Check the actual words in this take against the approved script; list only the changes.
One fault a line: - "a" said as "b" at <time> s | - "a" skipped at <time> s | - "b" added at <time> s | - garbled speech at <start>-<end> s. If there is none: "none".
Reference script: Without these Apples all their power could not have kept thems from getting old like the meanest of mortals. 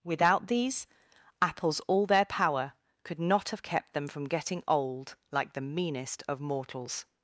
- "thems" said as "them" at 3.9 s